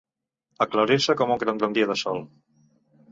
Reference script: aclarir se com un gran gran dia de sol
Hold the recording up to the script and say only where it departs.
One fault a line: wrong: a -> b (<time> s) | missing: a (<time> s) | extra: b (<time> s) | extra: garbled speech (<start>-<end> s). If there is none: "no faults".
no faults